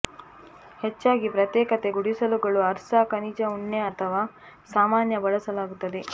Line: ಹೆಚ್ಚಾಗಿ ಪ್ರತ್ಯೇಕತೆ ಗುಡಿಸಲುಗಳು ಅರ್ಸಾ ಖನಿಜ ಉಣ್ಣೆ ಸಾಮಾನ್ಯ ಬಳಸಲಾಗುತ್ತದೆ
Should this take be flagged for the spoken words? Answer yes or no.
yes